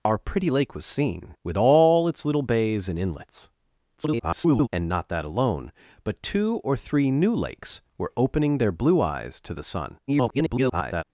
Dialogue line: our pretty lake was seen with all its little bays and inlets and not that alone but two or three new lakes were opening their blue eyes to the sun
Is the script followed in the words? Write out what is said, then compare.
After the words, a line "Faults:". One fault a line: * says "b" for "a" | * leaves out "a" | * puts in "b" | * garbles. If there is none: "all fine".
our pretty lake was seen with all its little bays and inlets [garbled] and not that alone but two or three new lakes were opening their blue eyes to the sun [garbled]
Faults:
* garbles
* garbles